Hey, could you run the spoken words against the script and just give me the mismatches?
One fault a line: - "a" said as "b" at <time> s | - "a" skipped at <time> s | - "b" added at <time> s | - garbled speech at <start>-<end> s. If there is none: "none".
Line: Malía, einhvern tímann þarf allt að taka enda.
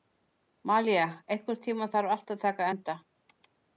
none